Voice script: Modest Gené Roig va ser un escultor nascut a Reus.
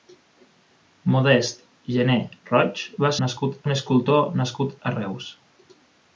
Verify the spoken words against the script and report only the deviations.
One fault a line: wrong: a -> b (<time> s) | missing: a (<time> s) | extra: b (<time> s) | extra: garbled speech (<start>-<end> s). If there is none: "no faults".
wrong: ser -> nascut (3.2 s)